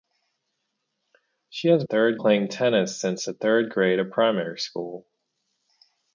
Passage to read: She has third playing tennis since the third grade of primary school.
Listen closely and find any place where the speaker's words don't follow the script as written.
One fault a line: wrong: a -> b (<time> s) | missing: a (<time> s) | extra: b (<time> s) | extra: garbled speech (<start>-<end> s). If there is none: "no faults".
no faults